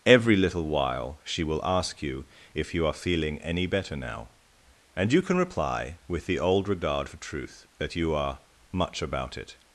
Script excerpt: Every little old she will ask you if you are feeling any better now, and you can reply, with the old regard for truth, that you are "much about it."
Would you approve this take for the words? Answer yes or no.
no